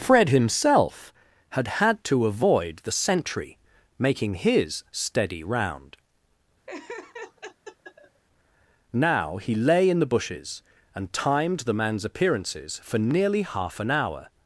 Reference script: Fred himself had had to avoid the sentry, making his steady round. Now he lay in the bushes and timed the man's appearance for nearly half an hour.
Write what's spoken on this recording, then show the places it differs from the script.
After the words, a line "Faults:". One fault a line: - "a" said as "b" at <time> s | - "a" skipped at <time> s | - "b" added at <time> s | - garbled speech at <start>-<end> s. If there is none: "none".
Fred himself had had to avoid the sentry, making his steady round. Now he lay in the bushes and timed the man's appearances for nearly half an hour.
Faults:
- "appearance" said as "appearances" at 12.0 s